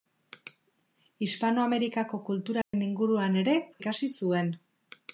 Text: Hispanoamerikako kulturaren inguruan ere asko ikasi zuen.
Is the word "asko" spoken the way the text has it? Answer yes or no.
no